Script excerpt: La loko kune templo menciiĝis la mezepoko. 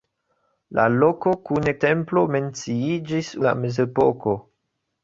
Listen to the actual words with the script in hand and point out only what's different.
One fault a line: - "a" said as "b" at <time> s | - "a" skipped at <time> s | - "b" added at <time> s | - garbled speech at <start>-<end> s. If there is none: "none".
none